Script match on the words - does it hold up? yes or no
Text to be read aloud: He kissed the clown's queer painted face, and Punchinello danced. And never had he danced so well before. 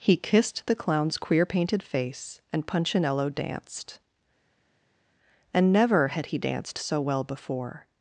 yes